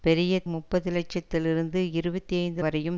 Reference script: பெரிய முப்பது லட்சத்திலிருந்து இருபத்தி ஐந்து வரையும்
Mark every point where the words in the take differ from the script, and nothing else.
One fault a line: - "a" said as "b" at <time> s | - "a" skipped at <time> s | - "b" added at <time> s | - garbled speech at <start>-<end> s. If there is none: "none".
none